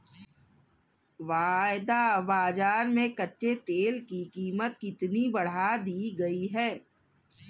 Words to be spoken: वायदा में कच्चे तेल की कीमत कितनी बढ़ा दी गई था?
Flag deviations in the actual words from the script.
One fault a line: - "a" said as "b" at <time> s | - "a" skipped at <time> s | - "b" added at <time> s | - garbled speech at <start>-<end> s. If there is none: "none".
- "बाजार" added at 2.2 s
- "था" said as "है" at 6.5 s